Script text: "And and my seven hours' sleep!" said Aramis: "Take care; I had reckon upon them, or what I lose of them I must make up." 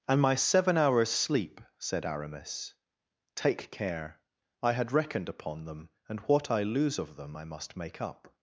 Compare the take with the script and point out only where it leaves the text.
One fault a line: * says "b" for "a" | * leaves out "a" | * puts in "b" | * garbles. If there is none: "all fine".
* leaves out "and"
* says "reckoned" for "reckon"
* says "and" for "or"